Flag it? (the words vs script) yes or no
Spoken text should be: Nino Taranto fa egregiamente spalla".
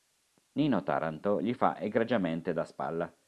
yes